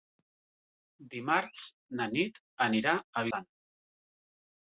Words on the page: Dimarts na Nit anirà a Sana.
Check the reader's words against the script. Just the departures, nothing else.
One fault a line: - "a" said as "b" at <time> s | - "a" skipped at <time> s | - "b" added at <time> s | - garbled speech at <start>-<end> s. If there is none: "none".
none